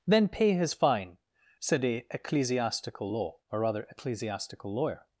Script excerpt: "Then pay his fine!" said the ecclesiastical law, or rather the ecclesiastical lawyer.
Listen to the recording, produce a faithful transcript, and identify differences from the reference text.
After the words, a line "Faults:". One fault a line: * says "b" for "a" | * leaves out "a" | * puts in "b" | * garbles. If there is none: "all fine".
"Then pay his fine!" said a ecclesiastical law, or rather ecclesiastical lawyer.
Faults:
* says "a" for "the"
* leaves out "the"